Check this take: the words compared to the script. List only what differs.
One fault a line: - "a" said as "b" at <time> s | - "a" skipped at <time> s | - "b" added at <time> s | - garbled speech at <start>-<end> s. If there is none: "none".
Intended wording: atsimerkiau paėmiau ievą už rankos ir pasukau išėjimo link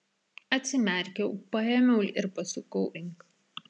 - "ievą už rankos" skipped at 2.1 s
- "išėjimo" skipped at 2.8 s